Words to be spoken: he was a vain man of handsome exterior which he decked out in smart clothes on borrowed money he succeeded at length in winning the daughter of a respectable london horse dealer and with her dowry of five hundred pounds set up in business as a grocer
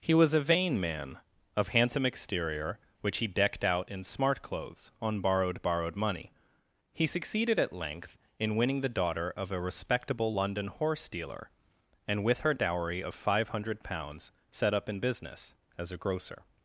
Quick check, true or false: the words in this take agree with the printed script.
false